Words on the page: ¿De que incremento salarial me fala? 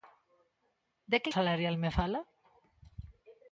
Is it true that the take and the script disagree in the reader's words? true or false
true